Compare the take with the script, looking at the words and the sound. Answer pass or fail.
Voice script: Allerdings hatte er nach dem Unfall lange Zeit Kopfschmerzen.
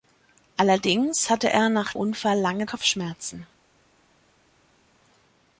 fail